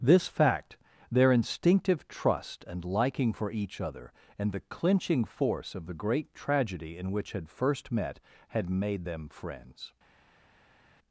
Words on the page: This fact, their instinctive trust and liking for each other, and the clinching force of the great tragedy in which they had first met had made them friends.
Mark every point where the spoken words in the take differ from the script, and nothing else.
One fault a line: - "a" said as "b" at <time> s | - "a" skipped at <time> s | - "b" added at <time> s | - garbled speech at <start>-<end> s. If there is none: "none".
- "they" skipped at 7.3 s